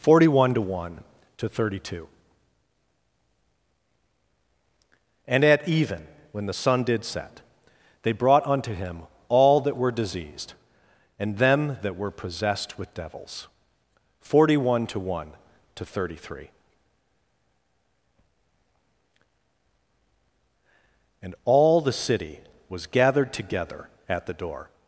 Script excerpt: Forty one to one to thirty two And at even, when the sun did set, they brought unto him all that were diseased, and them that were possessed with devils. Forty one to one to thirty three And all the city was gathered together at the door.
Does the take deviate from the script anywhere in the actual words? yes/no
no